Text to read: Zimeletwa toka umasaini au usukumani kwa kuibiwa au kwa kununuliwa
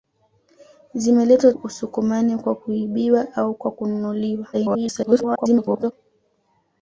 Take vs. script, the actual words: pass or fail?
fail